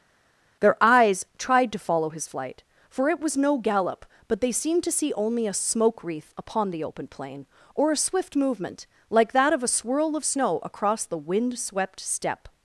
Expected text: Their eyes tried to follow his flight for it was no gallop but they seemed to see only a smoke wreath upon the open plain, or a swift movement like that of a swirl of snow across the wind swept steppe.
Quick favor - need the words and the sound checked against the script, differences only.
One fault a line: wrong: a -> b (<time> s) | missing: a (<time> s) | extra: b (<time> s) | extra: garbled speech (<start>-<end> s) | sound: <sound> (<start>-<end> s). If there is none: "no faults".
no faults